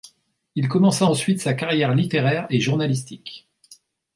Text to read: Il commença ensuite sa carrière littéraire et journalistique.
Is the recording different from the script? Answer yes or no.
no